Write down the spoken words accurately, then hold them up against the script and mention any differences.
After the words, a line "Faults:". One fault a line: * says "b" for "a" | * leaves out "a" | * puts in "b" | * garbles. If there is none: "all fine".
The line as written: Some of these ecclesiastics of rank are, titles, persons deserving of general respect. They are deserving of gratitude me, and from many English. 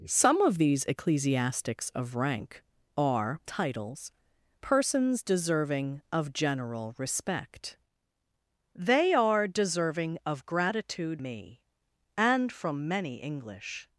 Some of these ecclesiastics of rank are, titles, persons deserving of general respect. They are deserving of gratitude me, and from many English.
Faults:
all fine